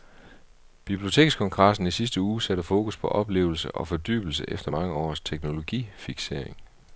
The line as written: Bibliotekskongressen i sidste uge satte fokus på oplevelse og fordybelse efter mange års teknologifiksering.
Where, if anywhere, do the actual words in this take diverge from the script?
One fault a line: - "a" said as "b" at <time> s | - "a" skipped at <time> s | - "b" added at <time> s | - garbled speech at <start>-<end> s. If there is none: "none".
none